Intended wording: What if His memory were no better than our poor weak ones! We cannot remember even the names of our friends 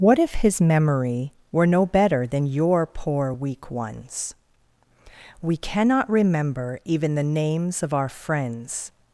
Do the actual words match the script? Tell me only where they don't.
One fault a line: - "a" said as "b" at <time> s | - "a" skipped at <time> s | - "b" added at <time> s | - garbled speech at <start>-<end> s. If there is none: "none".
- "our" said as "your" at 2.5 s